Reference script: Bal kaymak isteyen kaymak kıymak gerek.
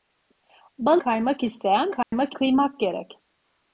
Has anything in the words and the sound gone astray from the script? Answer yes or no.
yes